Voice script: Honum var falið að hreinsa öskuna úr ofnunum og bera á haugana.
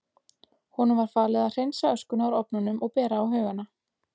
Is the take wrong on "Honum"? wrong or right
right